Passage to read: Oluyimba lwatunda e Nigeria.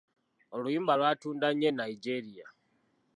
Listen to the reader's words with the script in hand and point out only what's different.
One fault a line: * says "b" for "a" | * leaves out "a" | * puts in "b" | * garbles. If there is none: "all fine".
* puts in "nnyo"